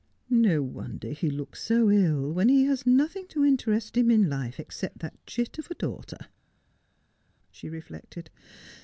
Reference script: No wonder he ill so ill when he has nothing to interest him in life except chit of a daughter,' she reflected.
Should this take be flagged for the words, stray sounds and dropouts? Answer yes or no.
yes